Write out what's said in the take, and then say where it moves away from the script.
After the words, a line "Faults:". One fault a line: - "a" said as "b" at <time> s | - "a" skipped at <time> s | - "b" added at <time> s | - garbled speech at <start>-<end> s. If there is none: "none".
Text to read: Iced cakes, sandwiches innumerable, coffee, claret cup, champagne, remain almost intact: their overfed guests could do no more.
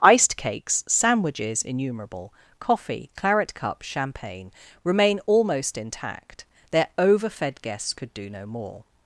Iced cakes, sandwiches innumerable, coffee, claret cup, champagne, remain almost intact: their overfed guests could do no more.
Faults:
none